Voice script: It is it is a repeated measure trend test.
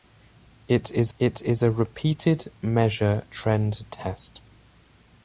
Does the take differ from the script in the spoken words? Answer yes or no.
no